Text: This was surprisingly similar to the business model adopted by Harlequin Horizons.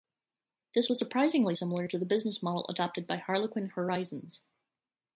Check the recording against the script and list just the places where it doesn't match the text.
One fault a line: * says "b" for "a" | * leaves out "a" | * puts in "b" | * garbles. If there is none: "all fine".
all fine